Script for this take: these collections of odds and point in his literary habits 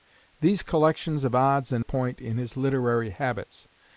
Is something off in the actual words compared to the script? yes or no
no